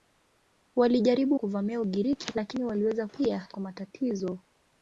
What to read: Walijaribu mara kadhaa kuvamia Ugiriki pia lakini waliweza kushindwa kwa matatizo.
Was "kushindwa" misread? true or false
true